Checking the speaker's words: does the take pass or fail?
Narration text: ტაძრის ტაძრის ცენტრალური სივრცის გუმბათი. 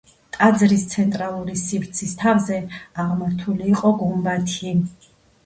fail